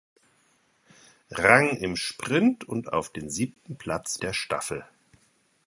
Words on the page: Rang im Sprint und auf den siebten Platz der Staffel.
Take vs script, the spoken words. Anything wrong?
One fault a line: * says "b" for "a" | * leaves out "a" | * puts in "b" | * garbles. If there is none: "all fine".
all fine